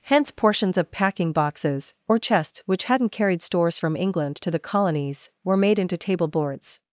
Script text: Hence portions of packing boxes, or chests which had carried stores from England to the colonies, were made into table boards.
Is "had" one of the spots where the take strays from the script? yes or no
yes